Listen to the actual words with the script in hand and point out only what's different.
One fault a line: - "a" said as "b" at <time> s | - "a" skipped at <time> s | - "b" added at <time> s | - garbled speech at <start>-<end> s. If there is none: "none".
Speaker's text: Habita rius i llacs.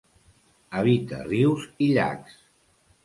none